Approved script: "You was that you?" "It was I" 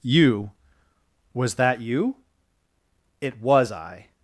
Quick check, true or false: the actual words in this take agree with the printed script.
true